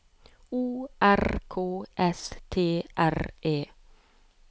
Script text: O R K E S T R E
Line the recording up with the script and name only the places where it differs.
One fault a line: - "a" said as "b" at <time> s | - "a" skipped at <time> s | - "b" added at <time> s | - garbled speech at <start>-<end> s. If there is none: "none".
- "E" skipped at 1.8 s